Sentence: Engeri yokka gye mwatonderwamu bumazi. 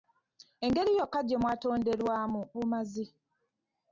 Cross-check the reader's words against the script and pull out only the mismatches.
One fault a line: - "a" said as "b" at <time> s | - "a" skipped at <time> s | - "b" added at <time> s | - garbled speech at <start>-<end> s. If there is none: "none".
none